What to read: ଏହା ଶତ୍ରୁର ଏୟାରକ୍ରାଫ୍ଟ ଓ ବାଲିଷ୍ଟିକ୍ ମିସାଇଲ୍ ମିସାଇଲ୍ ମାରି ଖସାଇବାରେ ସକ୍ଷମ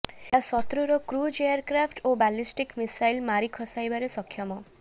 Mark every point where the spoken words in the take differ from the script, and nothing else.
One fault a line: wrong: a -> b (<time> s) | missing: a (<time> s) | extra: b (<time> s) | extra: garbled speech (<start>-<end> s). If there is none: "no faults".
extra: କ୍ରୁଜ୍ (1.1 s)
missing: ମିସାଇଲ୍ (3.2 s)